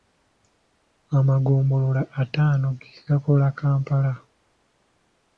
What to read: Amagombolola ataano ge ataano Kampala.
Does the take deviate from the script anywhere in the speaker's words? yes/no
yes